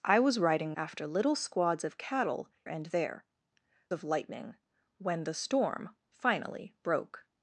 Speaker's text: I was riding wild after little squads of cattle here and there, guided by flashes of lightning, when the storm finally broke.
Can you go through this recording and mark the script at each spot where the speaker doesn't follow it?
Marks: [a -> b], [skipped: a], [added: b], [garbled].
I was riding [skipped: wild] after little squads of cattle [skipped: here] and there, [skipped: guided by flashes] of lightning, when the storm finally broke.